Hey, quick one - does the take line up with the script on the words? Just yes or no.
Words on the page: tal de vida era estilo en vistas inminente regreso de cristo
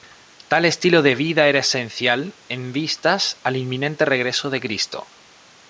no